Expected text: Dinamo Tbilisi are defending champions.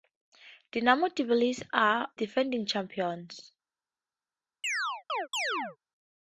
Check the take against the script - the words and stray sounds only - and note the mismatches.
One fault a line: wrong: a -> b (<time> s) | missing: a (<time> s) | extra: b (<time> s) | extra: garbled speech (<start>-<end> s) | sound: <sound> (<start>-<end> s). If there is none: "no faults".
sound: chirp (4.6-5.8 s)